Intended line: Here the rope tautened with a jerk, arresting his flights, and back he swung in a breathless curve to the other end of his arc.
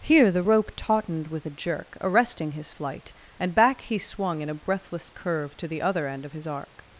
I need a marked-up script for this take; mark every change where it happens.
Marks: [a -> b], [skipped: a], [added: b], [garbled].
Here the rope tautened with a jerk, arresting his [flights, -> flight] and back he swung in a breathless curve to the other end of his arc.